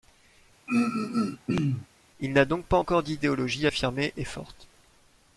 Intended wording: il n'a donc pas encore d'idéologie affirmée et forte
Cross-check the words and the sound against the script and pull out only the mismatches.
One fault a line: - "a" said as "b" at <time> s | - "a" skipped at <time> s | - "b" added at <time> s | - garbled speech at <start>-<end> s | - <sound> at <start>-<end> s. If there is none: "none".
- throat clearing at 0.7-1.9 s